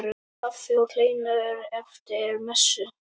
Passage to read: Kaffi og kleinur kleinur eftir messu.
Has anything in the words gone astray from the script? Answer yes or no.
yes